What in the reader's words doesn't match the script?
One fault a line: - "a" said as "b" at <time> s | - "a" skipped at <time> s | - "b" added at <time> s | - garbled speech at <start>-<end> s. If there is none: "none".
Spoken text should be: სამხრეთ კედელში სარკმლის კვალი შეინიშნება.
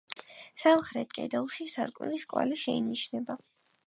none